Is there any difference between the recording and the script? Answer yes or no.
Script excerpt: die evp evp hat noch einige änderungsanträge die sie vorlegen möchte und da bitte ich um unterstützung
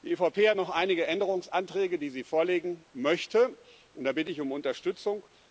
yes